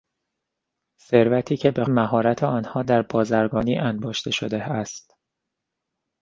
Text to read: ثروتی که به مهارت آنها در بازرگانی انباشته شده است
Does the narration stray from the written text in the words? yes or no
no